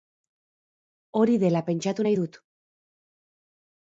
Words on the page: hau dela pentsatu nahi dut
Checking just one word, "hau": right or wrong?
wrong